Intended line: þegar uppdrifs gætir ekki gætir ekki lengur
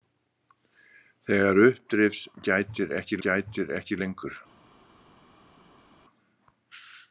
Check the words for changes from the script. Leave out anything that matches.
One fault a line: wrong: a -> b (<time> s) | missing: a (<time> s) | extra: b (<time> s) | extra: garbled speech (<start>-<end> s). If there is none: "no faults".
no faults